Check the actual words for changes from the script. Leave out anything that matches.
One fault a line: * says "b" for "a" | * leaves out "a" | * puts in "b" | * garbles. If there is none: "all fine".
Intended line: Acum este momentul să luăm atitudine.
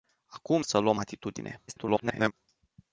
* leaves out "este momentul"
* garbles